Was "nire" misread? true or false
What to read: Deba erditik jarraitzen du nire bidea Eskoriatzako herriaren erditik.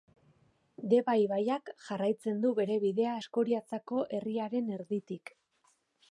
true